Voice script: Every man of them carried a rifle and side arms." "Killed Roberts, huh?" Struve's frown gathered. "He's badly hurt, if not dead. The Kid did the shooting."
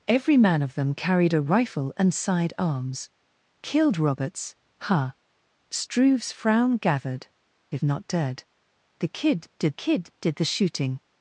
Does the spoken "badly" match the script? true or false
false